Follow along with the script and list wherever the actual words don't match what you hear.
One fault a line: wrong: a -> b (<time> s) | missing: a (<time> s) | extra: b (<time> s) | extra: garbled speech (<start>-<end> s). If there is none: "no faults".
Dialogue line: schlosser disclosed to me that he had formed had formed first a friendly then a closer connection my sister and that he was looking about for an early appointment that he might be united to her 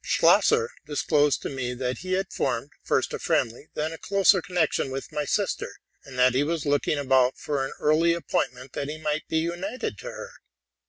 missing: had formed (2.7 s)
extra: with (4.9 s)